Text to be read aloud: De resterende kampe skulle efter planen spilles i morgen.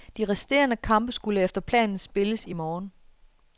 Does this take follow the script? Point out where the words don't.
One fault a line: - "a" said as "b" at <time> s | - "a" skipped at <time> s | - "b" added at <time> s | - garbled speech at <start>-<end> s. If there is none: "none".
none